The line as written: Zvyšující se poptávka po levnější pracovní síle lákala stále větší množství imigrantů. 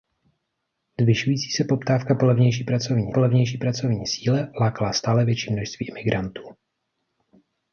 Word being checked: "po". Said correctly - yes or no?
yes